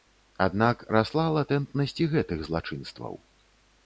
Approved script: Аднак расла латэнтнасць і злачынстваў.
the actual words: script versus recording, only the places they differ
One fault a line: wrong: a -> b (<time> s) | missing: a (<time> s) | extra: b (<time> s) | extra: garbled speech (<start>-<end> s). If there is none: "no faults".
extra: гэтых (2.1 s)